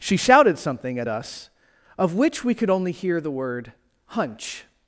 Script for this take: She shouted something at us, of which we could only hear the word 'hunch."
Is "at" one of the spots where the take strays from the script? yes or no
no